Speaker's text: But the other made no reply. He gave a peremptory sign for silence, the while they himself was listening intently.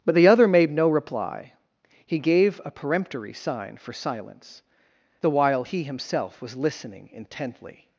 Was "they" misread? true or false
true